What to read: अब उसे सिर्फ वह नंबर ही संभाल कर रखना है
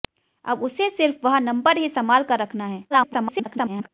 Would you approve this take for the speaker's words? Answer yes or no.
no